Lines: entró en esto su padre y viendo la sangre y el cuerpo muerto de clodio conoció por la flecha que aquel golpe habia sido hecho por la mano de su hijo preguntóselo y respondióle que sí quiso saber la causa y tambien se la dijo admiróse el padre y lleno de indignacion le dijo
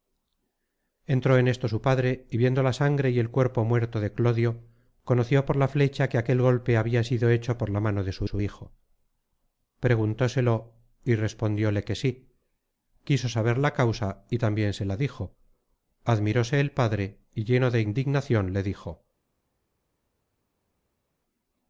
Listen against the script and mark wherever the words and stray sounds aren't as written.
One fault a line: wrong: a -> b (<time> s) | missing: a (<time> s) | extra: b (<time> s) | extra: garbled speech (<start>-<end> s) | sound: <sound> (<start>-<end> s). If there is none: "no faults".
extra: su (8.2 s)